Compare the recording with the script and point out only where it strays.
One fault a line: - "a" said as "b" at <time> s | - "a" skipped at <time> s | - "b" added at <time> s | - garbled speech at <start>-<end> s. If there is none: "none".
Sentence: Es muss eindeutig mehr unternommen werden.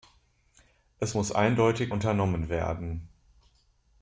- "mehr" skipped at 1.9 s